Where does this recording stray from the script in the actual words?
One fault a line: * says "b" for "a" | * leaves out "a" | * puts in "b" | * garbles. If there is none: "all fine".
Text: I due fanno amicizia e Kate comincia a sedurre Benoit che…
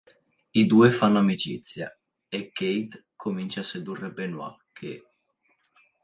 all fine